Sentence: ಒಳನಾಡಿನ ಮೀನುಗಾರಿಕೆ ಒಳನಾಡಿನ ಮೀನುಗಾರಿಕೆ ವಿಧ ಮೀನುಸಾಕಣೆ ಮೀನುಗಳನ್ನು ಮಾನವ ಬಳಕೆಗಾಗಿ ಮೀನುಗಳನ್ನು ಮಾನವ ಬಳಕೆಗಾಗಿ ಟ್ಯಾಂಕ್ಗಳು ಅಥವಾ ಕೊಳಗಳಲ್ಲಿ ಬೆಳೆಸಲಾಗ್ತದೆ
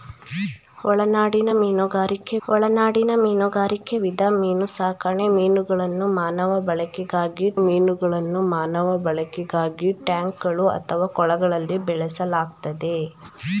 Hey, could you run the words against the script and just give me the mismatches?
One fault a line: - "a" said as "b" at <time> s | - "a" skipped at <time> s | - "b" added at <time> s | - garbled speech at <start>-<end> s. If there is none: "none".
none